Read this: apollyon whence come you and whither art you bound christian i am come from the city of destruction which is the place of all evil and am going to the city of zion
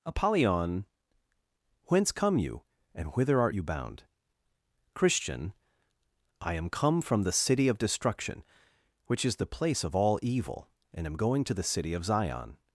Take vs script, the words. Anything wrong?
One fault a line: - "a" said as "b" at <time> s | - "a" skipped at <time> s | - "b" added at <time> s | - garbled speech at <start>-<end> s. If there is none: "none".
none